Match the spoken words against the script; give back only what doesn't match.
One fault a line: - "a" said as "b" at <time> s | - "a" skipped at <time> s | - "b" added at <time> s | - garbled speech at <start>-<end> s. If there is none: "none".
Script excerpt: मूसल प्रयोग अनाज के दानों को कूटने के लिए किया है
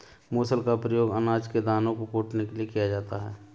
- "का" added at 0.6 s
- "जाता" added at 2.9 s